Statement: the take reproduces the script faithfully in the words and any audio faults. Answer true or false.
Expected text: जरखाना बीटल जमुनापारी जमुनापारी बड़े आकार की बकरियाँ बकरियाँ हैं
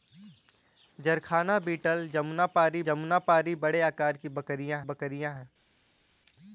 true